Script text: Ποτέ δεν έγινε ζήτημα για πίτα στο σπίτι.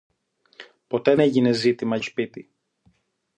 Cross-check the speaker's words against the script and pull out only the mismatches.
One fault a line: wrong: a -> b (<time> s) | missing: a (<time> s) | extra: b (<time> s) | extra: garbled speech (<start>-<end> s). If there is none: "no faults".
missing: δεν (1.1 s)
missing: για πίτα στο (2.0 s)